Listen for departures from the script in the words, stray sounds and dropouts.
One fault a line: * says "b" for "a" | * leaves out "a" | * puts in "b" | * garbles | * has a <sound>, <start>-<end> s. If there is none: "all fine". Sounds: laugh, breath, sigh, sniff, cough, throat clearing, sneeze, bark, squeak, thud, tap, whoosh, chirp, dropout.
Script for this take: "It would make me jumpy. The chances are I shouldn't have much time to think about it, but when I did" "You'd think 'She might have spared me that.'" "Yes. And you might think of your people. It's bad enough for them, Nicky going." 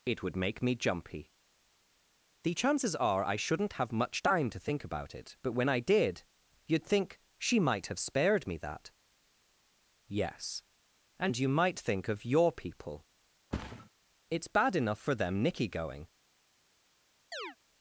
* has a thud, 13.5-13.9 s
* has a chirp, 17.3-17.6 s